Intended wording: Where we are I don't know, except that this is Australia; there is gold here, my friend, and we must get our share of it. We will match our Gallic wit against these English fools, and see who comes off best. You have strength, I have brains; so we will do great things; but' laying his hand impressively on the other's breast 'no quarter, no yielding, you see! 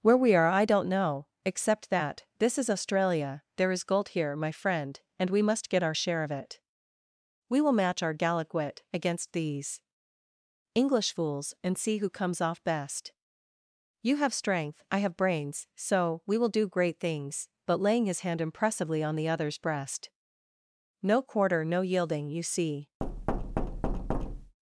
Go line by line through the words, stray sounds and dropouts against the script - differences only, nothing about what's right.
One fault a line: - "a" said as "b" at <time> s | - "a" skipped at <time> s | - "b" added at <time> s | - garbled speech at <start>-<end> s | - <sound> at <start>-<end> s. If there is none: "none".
- thud at 23.0-24.6 s